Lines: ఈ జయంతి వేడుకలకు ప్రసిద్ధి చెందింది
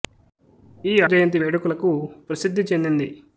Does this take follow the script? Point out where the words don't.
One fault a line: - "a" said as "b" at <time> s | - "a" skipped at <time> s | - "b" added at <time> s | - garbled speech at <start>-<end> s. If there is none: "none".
none